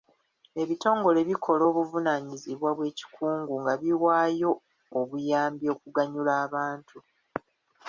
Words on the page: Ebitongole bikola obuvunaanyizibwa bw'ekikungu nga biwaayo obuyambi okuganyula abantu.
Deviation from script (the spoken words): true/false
false